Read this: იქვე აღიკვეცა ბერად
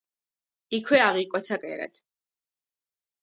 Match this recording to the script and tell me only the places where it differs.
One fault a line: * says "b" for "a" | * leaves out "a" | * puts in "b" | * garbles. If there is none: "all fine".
all fine